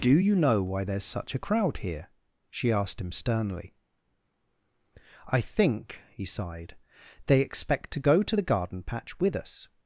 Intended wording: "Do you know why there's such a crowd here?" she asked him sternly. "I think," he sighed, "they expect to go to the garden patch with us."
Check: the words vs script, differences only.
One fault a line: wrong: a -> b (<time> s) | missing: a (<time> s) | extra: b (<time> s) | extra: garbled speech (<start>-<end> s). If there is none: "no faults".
no faults